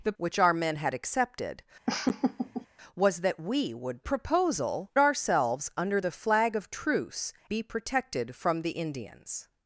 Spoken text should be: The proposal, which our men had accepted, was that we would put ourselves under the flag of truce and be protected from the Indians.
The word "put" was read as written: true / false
false